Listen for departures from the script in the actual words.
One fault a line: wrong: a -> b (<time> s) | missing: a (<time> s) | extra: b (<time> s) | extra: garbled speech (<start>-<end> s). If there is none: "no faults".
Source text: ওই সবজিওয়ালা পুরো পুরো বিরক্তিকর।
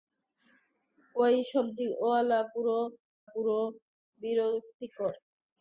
no faults